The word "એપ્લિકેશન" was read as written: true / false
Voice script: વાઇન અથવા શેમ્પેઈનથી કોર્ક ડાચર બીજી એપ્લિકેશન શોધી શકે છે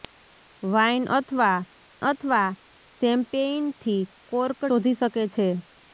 false